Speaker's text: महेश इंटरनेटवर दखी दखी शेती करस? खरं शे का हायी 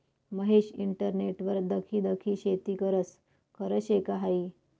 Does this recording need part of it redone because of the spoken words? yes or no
no